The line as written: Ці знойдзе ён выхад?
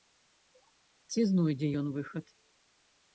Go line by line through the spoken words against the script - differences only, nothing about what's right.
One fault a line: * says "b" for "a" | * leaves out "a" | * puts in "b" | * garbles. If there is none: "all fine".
all fine